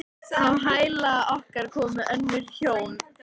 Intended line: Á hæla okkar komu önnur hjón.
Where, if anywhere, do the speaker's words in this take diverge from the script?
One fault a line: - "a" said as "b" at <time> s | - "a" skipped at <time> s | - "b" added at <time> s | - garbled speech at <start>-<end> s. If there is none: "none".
none